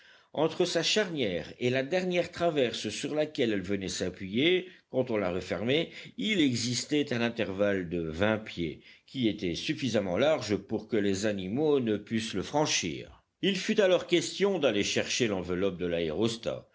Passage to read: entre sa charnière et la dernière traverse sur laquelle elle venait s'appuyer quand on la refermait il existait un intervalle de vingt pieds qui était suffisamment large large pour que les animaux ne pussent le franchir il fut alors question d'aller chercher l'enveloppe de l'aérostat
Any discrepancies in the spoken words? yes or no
yes